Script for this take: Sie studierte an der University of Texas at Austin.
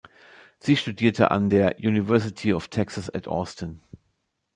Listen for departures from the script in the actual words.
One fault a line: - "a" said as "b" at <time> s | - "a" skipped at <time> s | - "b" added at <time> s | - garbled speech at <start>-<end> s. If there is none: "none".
none